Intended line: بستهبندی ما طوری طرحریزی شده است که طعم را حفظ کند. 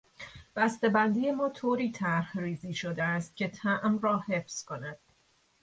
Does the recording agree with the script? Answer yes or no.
yes